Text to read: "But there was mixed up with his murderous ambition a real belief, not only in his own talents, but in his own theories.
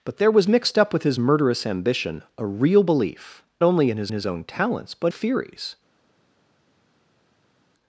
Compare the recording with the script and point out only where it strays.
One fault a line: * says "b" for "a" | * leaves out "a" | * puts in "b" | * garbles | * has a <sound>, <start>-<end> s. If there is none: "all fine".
* leaves out "not"
* puts in "his"
* leaves out "in his own"